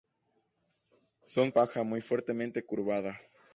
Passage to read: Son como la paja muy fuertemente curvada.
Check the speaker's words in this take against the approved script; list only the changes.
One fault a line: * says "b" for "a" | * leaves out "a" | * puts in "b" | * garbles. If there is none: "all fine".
* leaves out "como la"